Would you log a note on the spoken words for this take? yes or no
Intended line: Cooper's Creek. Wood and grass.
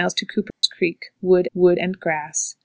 yes